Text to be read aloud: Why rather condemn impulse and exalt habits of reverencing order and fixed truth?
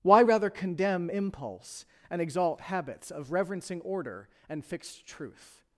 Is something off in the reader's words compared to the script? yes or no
no